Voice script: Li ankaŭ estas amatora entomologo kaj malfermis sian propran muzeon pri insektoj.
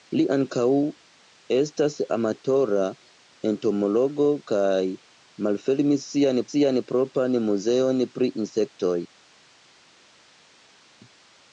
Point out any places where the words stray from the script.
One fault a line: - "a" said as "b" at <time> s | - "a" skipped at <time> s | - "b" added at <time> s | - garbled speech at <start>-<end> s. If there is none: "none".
- "sian" added at 6.5 s